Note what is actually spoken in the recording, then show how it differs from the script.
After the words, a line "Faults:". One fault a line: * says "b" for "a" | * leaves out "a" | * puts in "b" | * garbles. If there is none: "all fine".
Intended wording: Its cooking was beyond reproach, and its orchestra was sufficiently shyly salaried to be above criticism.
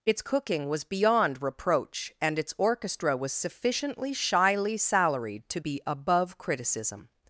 Its cooking was beyond reproach, and its orchestra was sufficiently shyly salaried to be above criticism.
Faults:
all fine